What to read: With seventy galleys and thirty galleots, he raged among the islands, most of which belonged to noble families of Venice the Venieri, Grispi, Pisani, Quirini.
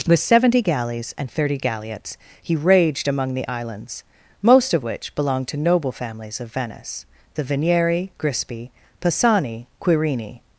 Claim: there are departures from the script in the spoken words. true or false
false